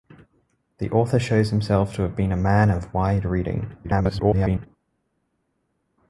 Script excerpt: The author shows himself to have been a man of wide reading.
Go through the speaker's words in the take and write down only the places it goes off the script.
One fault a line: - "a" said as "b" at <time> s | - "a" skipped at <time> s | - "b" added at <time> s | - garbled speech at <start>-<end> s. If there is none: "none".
- garbled speech at 3.8-4.7 s